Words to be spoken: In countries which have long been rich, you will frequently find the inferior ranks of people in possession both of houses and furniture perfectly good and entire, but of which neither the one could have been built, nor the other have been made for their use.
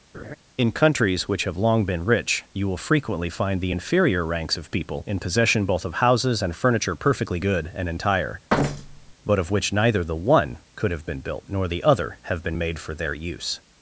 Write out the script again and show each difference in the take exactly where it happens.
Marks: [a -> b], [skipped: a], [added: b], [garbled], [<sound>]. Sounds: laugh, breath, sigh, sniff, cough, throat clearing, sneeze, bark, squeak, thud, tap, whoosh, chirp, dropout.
[laugh] In countries which have long been rich, you will frequently find the inferior ranks of people in possession both of houses and furniture perfectly good and entire, [thud] but of which neither the one could have been built, nor the other have been made for their use.